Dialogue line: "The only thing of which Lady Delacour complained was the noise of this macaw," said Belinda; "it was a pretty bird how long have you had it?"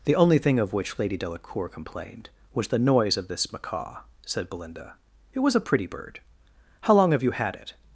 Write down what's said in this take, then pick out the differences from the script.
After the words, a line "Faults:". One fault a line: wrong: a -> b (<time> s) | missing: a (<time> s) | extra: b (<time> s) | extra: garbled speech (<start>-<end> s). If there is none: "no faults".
"The only thing of which Lady Delacour complained was the noise of this macaw," said Belinda; "it was a pretty bird how long have you had it?"
Faults:
no faults